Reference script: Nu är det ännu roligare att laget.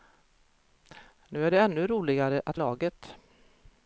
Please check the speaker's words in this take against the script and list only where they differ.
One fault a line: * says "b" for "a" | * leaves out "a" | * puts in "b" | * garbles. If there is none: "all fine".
all fine